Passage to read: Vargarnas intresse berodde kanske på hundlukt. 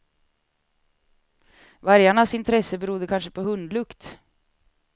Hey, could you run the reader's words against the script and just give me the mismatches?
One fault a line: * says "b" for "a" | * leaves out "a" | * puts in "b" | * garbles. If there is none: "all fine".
all fine